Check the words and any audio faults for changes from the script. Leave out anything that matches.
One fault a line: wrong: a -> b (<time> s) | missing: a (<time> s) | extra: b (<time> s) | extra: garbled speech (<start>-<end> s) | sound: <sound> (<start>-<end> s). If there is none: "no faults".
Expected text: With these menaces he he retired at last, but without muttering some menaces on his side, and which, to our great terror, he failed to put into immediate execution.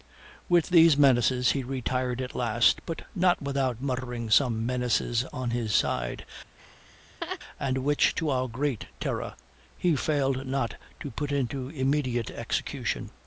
missing: he (1.6 s)
extra: not (3.1 s)
sound: laugh (6.6-7.4 s)
extra: not (10.5 s)